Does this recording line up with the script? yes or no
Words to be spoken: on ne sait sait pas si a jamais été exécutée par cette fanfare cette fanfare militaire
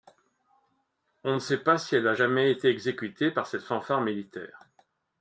no